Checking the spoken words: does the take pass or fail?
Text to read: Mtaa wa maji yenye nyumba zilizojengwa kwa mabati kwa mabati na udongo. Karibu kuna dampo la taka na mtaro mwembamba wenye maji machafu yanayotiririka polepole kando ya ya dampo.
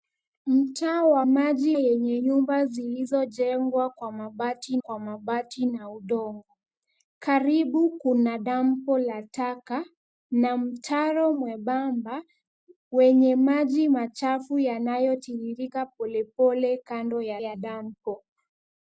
pass